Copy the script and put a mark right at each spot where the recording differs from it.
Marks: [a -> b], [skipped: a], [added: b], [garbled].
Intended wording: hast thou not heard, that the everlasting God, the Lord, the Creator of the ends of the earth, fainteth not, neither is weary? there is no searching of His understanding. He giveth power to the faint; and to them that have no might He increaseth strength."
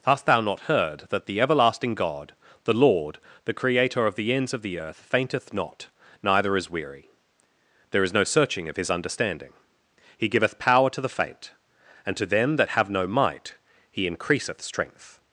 hast thou not heard, that the everlasting God, the Lord, the Creator of the ends of the earth, fainteth not, neither is weary? there is no searching of His understanding. He giveth power to the faint; and to them that have no might He increaseth strength."